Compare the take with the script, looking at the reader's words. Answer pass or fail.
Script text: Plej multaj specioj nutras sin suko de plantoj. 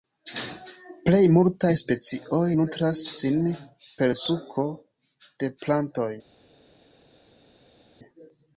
fail